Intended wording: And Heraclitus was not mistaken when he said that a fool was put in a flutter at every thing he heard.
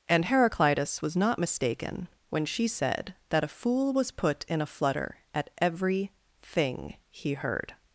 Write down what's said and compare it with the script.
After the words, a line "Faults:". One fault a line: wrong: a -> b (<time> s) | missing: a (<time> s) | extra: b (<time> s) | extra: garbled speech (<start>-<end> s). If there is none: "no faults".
And Heraclitus was not mistaken when she said that a fool was put in a flutter at every thing he heard.
Faults:
wrong: he -> she (2.5 s)